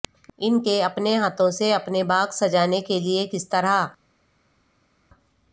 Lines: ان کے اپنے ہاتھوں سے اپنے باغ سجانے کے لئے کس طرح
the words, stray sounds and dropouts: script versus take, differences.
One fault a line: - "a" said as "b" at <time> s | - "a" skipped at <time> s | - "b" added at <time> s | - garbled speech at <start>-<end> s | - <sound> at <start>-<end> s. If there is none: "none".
none